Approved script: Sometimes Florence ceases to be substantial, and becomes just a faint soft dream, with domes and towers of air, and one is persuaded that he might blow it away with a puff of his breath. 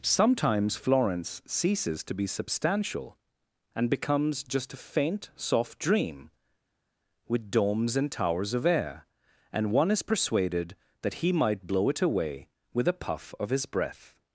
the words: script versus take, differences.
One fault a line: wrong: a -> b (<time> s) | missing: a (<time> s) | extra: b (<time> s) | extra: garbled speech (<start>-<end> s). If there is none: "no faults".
no faults